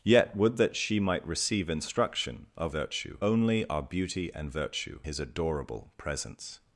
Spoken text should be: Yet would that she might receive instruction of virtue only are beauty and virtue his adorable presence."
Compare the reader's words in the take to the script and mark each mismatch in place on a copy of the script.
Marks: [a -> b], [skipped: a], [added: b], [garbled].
Yet would that she might receive instruction of virtue only are beauty and virtue his adorable presence."